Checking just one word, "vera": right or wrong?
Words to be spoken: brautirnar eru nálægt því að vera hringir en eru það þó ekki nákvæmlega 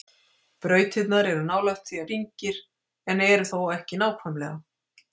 wrong